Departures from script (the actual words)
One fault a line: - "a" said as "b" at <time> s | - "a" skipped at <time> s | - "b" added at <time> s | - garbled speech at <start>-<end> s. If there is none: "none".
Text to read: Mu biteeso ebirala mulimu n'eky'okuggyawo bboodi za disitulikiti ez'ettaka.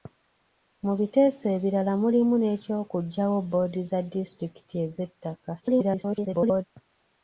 - garbled speech at 5.6-6.6 s